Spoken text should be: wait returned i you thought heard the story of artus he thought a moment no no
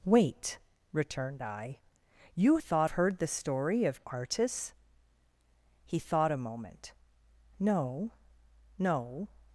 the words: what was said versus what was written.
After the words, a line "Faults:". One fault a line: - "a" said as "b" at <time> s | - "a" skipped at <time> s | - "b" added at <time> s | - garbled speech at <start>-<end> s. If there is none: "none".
wait returned i you thought heard the story of artus he thought a moment no no
Faults:
none